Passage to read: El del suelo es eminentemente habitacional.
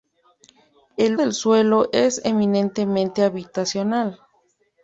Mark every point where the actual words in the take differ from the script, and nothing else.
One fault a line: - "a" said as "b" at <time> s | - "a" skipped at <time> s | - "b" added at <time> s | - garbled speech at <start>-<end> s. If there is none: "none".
none